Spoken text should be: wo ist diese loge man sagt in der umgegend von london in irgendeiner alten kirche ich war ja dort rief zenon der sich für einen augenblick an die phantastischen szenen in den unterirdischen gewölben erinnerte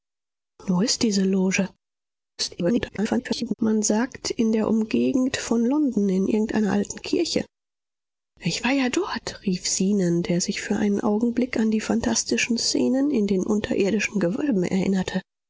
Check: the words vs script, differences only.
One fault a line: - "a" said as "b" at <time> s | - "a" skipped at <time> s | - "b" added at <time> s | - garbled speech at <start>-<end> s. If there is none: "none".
- garbled speech at 2.4-3.5 s